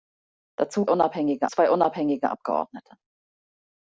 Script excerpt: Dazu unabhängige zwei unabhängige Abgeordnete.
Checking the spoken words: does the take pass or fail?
pass